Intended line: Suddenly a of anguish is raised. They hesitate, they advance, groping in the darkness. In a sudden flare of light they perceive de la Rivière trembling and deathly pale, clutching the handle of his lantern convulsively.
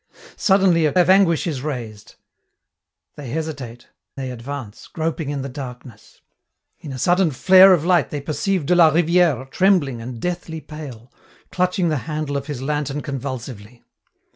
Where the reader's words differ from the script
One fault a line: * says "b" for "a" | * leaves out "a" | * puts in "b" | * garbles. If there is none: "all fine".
all fine